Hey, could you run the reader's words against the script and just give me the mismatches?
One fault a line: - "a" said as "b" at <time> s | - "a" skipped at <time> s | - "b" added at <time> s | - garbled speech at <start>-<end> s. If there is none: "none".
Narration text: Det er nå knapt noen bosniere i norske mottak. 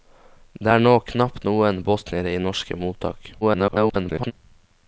- garbled speech at 3.4-4.3 s